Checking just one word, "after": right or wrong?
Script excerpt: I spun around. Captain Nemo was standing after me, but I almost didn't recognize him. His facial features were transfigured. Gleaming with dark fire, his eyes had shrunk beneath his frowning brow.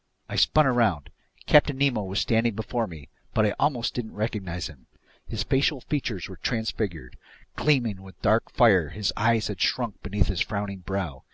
wrong